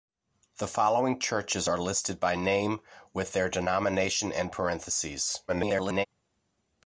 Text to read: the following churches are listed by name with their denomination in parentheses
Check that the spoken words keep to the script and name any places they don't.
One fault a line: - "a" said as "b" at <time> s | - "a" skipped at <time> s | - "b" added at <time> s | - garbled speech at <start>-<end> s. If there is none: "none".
- garbled speech at 5.5-6.1 s